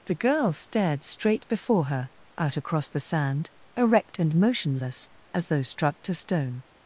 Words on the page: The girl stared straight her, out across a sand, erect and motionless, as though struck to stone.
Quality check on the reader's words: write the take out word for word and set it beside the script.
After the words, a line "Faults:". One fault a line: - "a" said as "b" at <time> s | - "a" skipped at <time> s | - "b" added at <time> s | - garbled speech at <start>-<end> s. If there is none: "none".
The girl stared straight before her, out across the sand, erect and motionless, as though struck to stone.
Faults:
- "before" added at 1.5 s
- "a" said as "the" at 2.9 s